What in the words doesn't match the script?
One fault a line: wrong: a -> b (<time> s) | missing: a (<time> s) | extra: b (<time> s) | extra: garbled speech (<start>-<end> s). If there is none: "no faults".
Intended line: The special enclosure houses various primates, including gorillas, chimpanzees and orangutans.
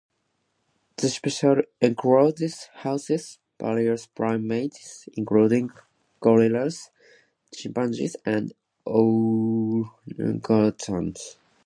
no faults